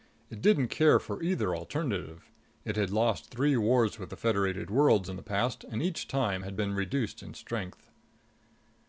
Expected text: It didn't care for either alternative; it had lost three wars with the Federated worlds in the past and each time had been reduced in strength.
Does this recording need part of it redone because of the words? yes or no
no